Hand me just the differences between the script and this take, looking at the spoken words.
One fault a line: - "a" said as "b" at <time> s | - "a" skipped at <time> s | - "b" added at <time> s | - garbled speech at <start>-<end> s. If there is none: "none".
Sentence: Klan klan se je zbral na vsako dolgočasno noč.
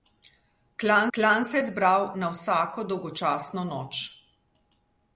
none